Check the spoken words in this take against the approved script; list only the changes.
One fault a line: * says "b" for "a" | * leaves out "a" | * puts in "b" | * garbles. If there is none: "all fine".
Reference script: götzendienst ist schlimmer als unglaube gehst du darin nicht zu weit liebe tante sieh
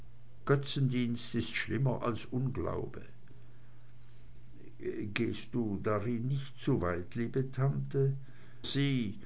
all fine